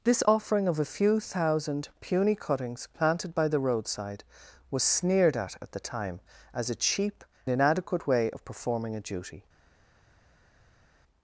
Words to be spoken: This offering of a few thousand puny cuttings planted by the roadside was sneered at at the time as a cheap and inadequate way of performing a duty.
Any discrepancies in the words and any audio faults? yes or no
yes